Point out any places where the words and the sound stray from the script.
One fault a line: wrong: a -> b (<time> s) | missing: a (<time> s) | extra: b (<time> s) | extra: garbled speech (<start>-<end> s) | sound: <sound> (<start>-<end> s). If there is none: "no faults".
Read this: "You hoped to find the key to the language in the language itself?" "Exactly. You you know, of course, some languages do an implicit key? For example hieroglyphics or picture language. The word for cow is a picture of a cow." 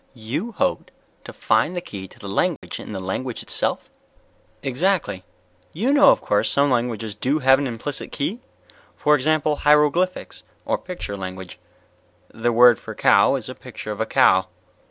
sound: dropout (2.6-2.6 s)
missing: you (5.9 s)
extra: have (7.4 s)